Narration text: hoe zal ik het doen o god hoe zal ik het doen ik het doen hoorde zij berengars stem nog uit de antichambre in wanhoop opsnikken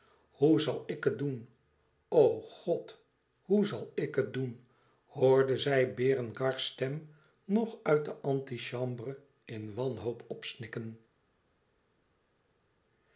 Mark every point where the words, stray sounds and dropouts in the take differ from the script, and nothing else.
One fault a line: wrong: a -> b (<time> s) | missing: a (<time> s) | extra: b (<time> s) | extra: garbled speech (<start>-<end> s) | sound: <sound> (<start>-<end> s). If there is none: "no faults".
missing: ik het doen (4.6 s)